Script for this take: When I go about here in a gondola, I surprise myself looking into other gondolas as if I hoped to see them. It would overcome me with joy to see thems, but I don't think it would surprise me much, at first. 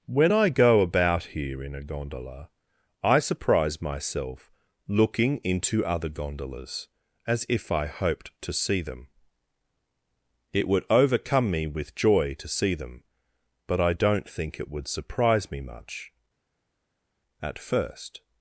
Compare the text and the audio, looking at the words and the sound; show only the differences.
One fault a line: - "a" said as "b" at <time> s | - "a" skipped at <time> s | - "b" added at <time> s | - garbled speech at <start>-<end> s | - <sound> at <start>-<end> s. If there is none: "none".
- "thems" said as "them" at 12.7 s